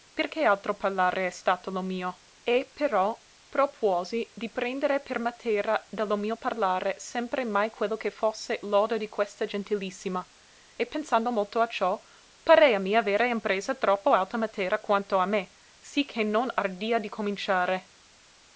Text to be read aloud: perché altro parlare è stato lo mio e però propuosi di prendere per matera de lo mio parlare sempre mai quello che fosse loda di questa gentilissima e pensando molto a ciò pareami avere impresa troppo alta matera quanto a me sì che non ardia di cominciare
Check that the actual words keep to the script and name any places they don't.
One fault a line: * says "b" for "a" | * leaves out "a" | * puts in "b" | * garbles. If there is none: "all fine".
all fine